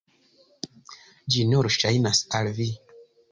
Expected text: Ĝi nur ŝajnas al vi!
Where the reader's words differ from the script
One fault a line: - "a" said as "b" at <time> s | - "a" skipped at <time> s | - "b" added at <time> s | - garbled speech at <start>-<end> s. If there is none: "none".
none